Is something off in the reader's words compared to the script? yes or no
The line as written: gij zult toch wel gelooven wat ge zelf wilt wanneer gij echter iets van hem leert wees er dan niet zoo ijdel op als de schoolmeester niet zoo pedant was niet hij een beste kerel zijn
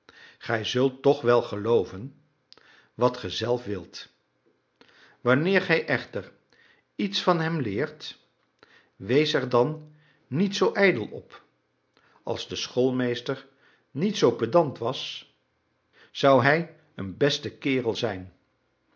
yes